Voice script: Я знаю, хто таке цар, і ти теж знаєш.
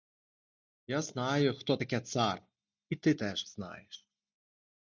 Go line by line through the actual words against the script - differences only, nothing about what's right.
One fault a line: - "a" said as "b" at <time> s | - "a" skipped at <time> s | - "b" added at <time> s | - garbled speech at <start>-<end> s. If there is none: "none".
none